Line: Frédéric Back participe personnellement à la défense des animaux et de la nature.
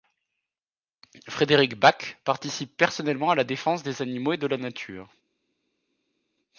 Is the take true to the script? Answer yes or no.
yes